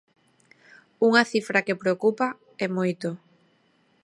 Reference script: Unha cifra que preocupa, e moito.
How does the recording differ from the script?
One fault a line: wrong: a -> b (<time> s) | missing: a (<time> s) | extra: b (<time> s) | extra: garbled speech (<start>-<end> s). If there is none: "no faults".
no faults